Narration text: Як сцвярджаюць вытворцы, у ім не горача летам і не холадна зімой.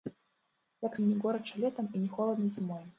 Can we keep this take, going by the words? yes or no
no